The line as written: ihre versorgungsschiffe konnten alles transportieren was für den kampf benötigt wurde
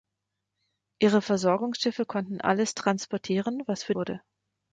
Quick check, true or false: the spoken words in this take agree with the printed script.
false